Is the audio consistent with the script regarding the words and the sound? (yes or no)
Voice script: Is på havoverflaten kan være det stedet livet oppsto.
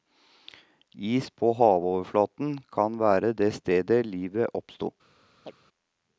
no